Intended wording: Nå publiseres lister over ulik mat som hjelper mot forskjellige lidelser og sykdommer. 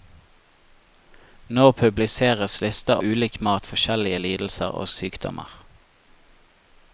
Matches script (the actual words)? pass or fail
fail